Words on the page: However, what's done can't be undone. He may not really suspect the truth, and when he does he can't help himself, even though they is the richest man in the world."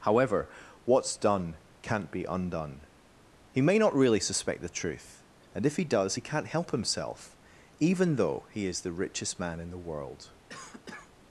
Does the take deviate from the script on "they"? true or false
true